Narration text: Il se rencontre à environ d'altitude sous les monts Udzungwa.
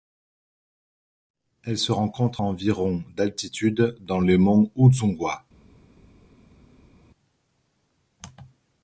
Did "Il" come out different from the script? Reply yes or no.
yes